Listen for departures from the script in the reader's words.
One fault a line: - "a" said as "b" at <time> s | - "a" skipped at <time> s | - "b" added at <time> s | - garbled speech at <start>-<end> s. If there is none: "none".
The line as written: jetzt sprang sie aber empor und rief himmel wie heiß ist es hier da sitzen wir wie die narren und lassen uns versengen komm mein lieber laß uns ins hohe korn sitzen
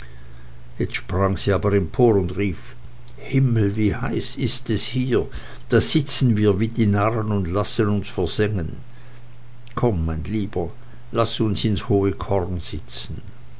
none